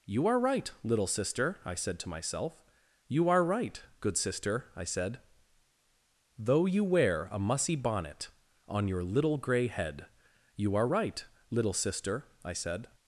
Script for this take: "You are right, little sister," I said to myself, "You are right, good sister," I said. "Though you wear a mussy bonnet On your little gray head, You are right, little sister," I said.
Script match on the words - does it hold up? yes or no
yes